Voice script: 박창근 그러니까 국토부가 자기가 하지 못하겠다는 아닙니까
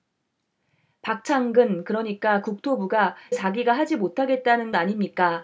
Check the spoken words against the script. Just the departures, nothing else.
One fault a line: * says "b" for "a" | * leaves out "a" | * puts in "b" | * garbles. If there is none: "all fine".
all fine